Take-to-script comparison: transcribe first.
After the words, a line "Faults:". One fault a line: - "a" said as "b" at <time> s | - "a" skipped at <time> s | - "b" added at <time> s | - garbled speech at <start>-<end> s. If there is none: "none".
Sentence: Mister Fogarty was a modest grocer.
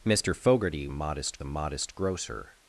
Mister Fogarty modest a modest grocer.
Faults:
- "was" said as "modest" at 0.9 s